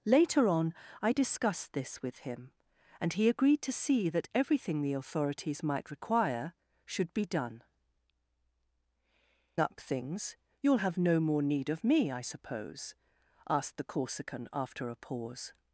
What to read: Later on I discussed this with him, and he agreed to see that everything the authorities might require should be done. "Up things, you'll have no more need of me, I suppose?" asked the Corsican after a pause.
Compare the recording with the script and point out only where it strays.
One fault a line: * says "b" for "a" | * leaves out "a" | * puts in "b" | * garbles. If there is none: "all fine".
all fine